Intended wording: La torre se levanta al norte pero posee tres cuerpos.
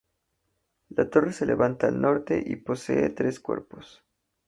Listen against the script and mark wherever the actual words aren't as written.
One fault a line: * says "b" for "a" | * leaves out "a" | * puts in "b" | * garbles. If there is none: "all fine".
* says "y" for "pero"